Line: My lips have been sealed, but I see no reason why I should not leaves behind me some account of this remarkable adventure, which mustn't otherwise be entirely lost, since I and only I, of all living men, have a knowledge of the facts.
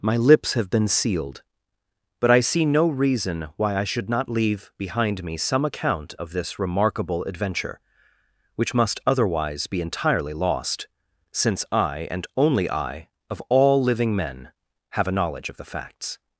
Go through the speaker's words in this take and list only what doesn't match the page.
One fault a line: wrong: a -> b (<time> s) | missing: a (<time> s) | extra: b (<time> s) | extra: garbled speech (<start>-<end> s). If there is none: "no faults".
wrong: leaves -> leave (4.3 s)
wrong: mustn't -> must (8.7 s)